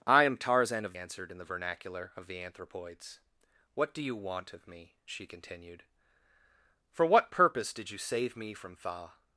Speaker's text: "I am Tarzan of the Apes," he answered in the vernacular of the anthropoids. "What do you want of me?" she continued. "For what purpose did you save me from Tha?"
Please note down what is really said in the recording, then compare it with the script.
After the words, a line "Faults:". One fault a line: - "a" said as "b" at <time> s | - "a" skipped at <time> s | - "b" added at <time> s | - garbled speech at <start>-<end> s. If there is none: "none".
"I am Tarzan of answered in the vernacular of the anthropoids. "What do you want of me?" she continued. "For what purpose did you save me from Tha?"
Faults:
- "the Apes he" skipped at 0.9 s